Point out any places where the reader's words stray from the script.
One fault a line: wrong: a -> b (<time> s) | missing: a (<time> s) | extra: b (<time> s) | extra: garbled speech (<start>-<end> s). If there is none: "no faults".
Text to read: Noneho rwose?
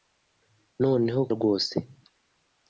no faults